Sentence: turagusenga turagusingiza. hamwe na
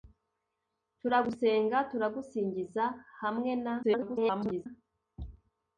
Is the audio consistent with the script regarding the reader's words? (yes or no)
no